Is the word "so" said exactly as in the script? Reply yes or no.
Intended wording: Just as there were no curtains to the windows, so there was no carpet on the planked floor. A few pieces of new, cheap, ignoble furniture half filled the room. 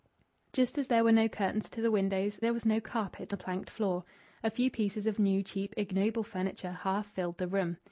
no